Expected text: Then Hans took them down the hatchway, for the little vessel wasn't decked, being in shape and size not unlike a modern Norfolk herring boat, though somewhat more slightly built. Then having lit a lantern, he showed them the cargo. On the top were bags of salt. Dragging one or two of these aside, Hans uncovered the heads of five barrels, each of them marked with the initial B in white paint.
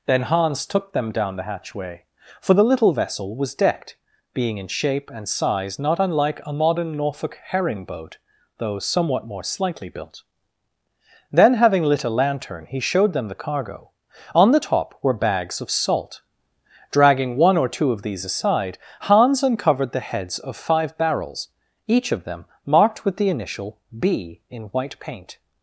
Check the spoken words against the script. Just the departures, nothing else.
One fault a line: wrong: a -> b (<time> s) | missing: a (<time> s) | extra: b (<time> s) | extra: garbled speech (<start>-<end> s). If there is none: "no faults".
wrong: wasn't -> was (3.4 s)